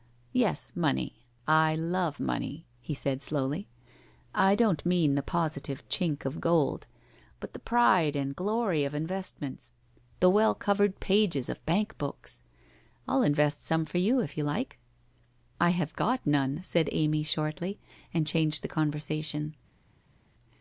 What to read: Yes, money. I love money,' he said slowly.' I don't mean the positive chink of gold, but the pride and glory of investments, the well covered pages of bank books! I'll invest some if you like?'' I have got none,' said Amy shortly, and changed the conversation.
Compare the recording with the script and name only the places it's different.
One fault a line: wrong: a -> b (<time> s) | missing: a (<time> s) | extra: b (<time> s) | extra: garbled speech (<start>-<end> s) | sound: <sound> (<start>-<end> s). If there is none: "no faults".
extra: for you (13.8 s)